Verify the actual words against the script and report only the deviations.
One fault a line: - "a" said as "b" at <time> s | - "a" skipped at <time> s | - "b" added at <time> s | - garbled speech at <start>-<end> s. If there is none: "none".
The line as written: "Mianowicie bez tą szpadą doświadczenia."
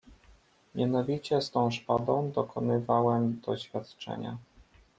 - "bez" said as "z" at 1.4 s
- "dokonywałem" added at 2.3 s